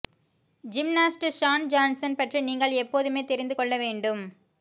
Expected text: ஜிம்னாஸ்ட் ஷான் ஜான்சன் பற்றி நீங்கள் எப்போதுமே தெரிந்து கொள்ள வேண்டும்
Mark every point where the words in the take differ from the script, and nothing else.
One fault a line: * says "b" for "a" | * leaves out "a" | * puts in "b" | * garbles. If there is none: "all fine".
all fine